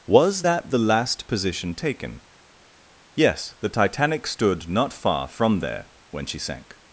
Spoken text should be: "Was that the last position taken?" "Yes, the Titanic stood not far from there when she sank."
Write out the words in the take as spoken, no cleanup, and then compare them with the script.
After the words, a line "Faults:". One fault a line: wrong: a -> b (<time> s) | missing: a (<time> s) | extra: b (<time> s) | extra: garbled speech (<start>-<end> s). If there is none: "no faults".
"Was that the last position taken?" "Yes, the Titanic stood not far from there when she sank."
Faults:
no faults